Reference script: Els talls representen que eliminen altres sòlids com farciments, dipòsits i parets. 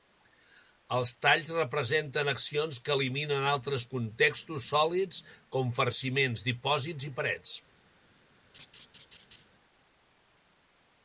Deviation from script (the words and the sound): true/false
true